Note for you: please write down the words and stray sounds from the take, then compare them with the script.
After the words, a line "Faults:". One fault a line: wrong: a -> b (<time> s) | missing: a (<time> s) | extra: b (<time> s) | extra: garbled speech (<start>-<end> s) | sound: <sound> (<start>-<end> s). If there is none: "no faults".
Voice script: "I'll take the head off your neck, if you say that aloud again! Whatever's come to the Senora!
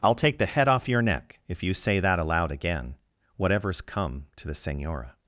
"I'll take the head off your neck, if you say that aloud again! Whatever's come to the Senora!
Faults:
no faults